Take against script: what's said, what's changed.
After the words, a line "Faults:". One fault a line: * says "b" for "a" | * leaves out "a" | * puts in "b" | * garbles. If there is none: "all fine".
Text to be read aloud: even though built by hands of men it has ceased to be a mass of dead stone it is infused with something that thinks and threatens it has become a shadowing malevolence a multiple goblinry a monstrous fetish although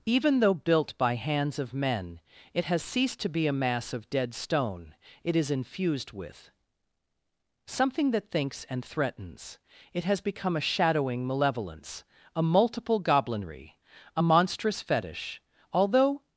even though built by hands of men it has ceased to be a mass of dead stone it is infused with something that thinks and threatens it has become a shadowing malevolence a multiple goblinry a monstrous fetish although
Faults:
all fine